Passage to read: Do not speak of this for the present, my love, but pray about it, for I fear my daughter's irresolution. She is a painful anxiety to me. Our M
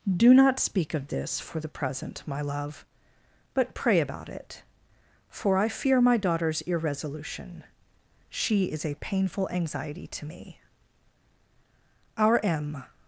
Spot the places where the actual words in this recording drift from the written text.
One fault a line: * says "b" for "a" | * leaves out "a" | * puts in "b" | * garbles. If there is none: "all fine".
all fine